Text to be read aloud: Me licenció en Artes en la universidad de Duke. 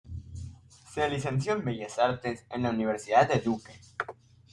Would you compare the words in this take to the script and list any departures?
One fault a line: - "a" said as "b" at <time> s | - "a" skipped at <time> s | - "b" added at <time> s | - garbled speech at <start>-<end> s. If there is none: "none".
- "Me" said as "Se" at 0.9 s
- "Bellas" added at 1.6 s